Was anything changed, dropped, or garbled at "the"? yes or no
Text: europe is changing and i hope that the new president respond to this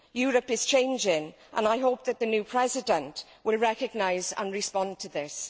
no